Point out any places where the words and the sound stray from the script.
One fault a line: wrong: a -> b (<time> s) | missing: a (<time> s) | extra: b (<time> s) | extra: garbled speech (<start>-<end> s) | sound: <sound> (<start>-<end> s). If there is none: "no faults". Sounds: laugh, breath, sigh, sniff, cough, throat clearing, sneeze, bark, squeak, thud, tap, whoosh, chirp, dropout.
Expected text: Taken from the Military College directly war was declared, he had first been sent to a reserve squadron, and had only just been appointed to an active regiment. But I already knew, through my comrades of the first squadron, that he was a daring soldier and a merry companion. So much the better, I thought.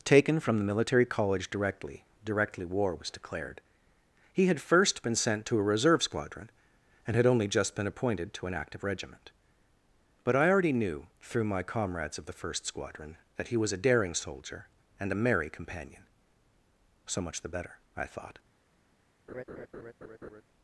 extra: directly (2.2 s)
sound: laugh (19.3-20.4 s)